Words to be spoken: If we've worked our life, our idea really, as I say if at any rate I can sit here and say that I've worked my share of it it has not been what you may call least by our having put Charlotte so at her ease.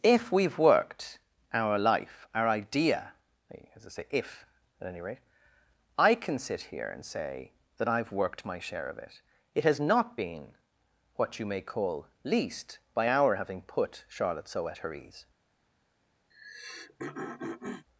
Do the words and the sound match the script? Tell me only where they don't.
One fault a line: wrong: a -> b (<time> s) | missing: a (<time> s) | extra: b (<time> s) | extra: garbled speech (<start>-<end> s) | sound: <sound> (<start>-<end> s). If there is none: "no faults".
missing: really (3.1 s)
sound: throat clearing (16.3-17.9 s)